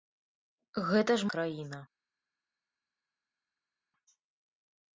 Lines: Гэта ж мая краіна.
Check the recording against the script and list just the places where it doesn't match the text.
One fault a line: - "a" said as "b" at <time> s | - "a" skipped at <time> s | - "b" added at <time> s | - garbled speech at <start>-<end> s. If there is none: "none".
- "мая" skipped at 1.3 s